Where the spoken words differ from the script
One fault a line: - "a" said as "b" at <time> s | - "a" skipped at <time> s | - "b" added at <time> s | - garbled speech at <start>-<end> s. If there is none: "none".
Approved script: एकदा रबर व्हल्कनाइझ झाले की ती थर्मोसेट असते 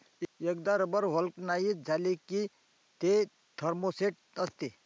- "ती" said as "ते" at 3.0 s